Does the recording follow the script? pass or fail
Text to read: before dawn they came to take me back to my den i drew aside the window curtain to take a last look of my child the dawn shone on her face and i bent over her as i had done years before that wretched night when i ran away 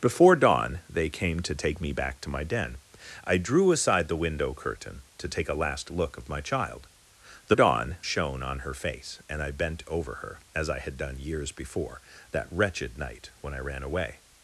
pass